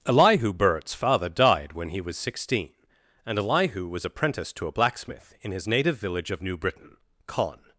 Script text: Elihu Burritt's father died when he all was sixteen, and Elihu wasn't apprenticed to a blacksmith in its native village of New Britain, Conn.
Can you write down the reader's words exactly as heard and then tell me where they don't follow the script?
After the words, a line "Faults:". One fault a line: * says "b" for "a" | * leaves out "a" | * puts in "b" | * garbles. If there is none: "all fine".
Elihu Burritt's father died when he was sixteen, and Elihu was apprenticed to a blacksmith in his native village of New Britain, Conn.
Faults:
* leaves out "all"
* says "was" for "wasn't"
* says "his" for "its"